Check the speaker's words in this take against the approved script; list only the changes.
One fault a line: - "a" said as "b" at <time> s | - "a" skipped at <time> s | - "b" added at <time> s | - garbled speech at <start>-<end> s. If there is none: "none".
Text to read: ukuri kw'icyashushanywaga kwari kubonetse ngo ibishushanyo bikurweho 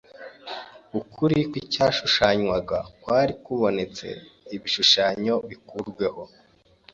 - "ngo" skipped at 4.1 s